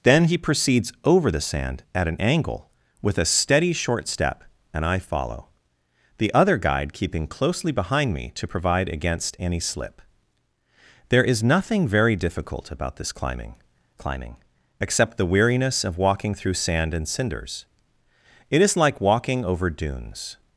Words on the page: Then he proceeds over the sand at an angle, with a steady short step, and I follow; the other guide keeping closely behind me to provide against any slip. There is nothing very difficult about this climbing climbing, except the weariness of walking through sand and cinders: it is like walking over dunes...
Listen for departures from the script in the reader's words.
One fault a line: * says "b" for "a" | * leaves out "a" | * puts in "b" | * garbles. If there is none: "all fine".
all fine